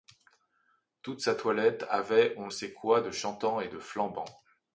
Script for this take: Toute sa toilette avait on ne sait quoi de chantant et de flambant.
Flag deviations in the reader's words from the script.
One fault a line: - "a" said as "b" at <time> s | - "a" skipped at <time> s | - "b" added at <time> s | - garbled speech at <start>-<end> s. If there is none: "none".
- "ne" skipped at 2.5 s